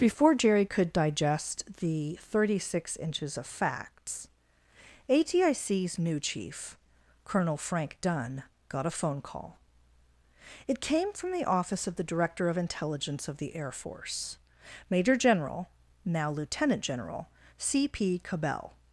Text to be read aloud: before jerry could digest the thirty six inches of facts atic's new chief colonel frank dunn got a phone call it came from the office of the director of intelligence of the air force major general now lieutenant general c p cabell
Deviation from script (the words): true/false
false